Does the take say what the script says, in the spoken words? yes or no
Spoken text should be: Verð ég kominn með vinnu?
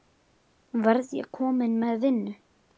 yes